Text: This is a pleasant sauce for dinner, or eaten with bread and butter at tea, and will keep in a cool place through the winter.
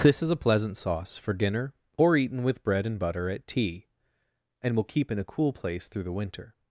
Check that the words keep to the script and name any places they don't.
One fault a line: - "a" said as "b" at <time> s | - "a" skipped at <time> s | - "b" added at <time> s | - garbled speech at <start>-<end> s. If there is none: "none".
none